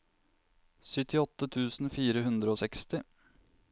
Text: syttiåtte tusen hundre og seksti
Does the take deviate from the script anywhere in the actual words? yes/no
yes